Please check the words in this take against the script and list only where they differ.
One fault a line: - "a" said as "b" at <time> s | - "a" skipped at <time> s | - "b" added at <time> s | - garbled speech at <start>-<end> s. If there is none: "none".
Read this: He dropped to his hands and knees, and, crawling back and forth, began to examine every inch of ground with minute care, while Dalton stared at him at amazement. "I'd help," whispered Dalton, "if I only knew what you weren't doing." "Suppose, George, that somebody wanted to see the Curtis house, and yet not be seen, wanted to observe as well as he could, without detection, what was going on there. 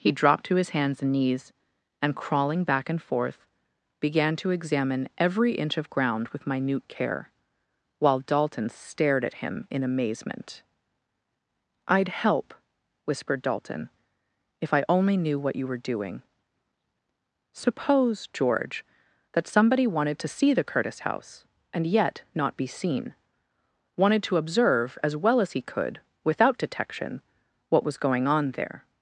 - "at" said as "in" at 9.7 s
- "weren't" said as "were" at 15.7 s